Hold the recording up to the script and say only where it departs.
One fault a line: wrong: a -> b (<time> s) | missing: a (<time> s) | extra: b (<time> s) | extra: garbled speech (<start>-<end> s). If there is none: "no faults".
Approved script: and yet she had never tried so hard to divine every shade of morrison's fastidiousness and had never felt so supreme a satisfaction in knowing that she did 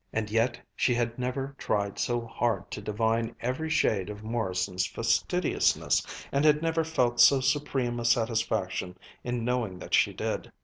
no faults